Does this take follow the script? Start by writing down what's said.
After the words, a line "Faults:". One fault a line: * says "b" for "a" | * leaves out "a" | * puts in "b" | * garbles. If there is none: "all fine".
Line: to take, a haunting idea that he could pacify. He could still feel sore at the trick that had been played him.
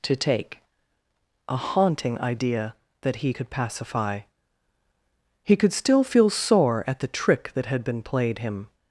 to take, a haunting idea that he could pacify. He could still feel sore at the trick that had been played him.
Faults:
all fine